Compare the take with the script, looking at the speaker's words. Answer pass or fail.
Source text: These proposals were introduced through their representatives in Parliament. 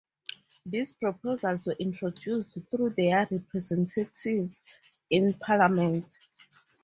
pass